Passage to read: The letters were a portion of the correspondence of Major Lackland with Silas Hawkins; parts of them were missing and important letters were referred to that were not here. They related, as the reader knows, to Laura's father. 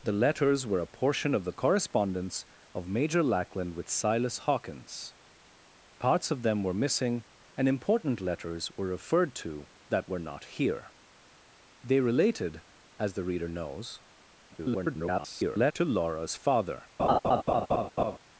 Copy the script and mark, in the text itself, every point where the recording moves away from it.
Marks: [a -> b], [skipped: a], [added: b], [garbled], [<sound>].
The letters were a portion of the correspondence of Major Lackland with Silas Hawkins; parts of them were missing and important letters were referred to that were not here. They related, as the reader knows, [garbled] to Laura's father. [laugh]